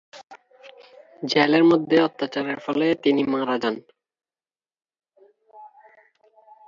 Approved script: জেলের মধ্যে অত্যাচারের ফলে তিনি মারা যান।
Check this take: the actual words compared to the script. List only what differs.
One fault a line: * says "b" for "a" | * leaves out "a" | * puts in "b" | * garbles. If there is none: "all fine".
all fine